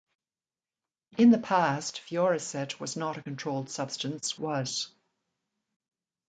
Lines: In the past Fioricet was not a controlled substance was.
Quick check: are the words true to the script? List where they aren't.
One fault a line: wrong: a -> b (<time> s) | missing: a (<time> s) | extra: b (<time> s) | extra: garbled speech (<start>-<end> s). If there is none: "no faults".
no faults